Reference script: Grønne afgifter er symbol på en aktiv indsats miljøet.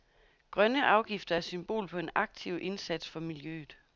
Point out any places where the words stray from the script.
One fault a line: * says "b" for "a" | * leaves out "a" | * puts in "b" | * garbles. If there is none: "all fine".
* puts in "for"